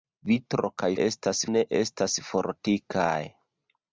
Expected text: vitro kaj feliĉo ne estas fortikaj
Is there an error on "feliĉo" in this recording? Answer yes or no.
yes